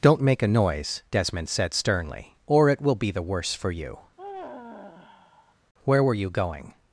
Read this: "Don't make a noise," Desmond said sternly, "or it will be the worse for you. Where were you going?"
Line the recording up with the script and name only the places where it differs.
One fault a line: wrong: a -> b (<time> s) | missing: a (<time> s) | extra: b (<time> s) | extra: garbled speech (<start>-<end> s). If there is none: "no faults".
no faults